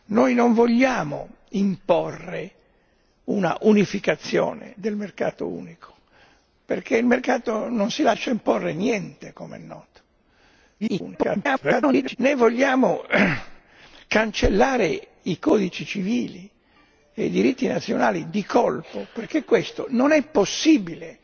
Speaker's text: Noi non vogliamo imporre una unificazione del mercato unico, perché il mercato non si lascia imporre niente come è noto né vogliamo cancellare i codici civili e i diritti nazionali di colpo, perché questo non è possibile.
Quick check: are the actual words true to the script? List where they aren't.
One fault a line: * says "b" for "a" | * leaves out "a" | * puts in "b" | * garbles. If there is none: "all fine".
* garbles